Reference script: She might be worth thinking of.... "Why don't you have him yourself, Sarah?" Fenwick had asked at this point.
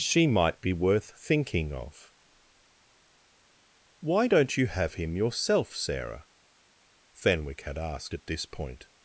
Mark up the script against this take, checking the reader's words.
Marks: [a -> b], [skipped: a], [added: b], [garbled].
She might be worth thinking of.... "Why don't you have him yourself, Sarah?" Fenwick had asked at this point.